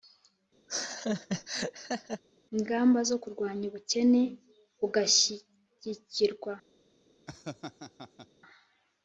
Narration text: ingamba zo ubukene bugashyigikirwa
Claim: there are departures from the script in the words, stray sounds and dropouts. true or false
true